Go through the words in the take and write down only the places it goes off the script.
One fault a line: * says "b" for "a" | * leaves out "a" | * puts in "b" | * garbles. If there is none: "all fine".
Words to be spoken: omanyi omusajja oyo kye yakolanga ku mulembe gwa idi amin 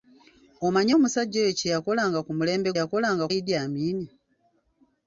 * says "yakolanga" for "gwa"